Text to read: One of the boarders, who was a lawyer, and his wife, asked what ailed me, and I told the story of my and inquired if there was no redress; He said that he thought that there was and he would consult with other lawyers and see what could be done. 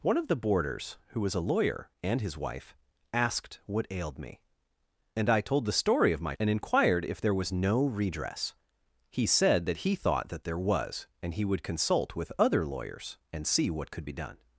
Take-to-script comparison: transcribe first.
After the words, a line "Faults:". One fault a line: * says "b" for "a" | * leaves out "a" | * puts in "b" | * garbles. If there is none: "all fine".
One of the boarders, who was a lawyer, and his wife, asked what ailed me, and I told the story of my and inquired if there was no redress; He said that he thought that there was and he would consult with other lawyers and see what could be done.
Faults:
all fine